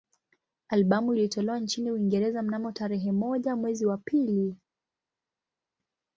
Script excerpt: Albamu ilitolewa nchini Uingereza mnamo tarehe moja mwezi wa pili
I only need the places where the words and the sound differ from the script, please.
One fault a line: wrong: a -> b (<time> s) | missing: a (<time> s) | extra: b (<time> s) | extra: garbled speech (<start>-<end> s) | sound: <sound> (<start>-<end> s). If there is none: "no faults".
no faults